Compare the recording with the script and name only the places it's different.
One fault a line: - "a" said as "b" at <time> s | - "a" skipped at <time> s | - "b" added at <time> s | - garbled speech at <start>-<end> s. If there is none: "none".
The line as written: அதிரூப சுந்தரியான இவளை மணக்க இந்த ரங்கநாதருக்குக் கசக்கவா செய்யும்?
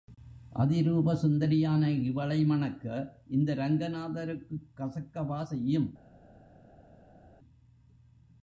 none